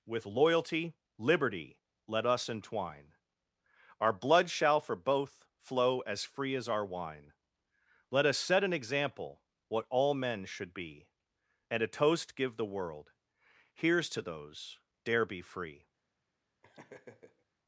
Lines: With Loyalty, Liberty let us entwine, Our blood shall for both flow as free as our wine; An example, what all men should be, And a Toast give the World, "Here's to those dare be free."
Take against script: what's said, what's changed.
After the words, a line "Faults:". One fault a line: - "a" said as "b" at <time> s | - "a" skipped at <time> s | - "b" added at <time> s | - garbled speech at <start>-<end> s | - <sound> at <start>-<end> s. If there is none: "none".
With Loyalty, Liberty let us entwine, Our blood shall for both flow as free as our wine; Let us set an example, what all men should be, And a Toast give the World, "Here's to those dare be free."
Faults:
- "Let us set" added at 8.1 s
- laugh at 16.6-17.5 s